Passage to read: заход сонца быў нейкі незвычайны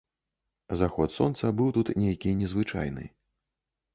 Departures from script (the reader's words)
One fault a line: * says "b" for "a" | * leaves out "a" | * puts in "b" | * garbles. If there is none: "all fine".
* puts in "тут"